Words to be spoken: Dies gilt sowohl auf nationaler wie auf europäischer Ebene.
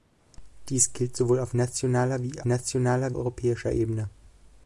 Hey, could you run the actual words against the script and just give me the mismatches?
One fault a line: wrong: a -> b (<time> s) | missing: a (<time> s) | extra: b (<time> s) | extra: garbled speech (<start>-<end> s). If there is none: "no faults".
wrong: auf -> nationaler (2.4 s)